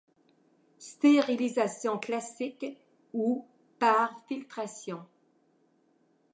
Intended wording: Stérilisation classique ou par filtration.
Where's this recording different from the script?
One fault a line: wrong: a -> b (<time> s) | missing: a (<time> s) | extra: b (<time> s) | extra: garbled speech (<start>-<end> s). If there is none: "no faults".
no faults